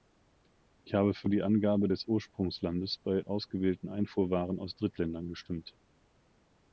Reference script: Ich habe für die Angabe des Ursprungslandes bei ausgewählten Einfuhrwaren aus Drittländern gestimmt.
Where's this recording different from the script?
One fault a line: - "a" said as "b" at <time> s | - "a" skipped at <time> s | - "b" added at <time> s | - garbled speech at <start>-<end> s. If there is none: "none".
none